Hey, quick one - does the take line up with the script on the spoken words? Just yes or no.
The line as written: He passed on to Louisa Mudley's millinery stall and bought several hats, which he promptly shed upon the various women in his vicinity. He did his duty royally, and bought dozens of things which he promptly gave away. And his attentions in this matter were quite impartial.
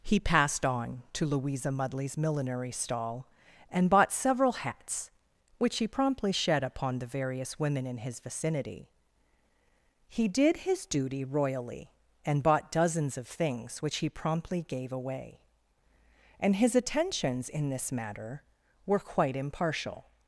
yes